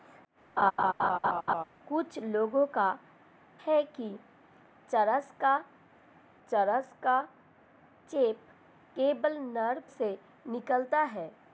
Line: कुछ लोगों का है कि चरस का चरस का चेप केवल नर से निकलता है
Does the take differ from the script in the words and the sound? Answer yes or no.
yes